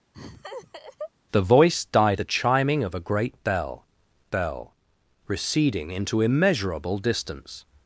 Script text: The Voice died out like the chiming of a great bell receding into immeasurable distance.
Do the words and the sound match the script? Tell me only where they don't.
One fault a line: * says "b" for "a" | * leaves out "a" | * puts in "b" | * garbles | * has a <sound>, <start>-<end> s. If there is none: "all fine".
* has a laugh, 0.1-1.1 s
* leaves out "out like"
* puts in "bell"